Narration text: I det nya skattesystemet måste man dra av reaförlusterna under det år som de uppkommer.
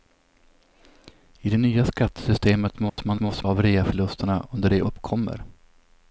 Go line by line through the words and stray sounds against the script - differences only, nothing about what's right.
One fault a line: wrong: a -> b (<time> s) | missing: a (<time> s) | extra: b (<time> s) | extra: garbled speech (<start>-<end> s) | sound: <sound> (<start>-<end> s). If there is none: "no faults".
sound: dropout (2.9-3.0 s)
wrong: dra -> måste (3.2 s)
missing: år som de (4.8 s)